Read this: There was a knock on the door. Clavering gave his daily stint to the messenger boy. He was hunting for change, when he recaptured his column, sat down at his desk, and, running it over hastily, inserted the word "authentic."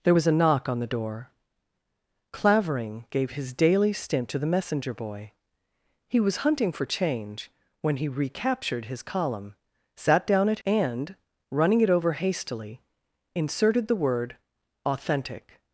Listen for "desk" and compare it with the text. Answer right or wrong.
wrong